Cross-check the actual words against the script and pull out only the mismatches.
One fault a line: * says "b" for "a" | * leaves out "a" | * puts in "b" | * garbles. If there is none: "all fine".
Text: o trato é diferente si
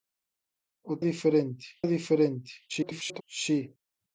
* says "diferente" for "trato"
* garbles